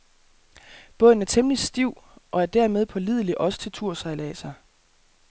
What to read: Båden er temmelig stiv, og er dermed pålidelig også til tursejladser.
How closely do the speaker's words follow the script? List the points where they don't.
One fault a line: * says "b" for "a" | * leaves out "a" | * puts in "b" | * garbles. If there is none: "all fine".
all fine